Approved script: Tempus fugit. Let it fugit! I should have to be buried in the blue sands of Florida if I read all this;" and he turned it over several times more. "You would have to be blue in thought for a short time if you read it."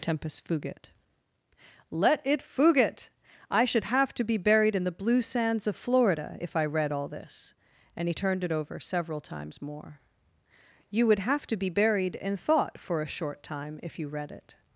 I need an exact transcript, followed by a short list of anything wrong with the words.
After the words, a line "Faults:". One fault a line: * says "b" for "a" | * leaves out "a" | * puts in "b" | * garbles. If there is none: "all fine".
Tempus fugit. Let it fugit! I should have to be buried in the blue sands of Florida if I read all this;" and he turned it over several times more. "You would have to be buried in thought for a short time if you read it."
Faults:
* says "buried" for "blue"